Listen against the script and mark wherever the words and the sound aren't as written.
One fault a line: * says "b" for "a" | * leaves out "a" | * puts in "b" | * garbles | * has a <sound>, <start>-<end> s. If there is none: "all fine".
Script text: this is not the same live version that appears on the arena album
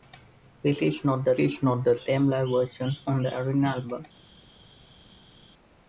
* puts in "is not the"
* leaves out "that appears"